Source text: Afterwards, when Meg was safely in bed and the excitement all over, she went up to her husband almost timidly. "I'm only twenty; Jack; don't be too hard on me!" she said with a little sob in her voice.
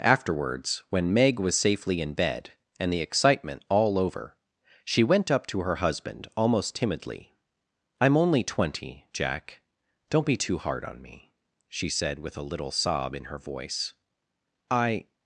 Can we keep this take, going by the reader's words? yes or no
no